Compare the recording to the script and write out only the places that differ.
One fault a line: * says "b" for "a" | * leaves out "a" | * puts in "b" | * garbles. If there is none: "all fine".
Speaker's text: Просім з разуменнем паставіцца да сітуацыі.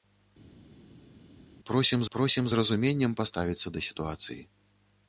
* puts in "просім"